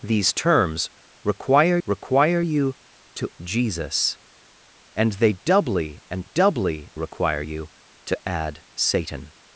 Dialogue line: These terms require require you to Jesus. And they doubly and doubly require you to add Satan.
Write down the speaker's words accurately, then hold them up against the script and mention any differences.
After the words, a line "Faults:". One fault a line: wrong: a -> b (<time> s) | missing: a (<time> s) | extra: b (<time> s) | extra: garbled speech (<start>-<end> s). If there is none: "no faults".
These terms require require you to Jesus. And they doubly and doubly require you to add Satan.
Faults:
no faults